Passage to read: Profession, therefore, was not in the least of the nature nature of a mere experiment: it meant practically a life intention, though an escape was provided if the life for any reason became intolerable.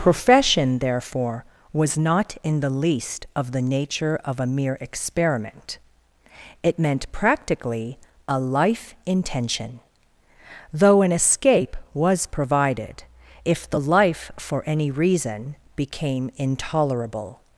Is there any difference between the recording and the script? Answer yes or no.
yes